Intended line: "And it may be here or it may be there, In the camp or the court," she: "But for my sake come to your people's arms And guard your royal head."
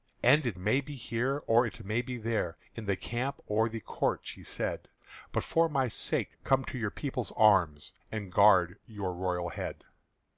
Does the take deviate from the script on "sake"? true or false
false